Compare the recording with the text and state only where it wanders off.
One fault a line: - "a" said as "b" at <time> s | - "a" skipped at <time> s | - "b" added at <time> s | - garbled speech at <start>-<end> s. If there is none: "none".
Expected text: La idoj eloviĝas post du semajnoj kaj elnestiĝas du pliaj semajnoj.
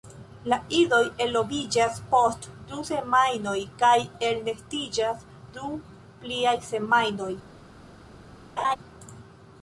none